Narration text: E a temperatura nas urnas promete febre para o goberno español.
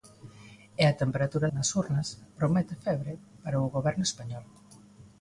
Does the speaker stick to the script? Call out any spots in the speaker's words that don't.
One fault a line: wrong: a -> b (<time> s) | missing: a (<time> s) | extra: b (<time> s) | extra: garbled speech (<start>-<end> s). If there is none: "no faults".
no faults